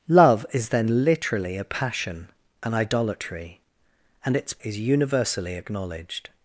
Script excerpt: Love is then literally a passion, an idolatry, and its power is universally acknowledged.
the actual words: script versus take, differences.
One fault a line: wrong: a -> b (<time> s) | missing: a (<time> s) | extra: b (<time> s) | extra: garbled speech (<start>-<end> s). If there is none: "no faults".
missing: power (4.5 s)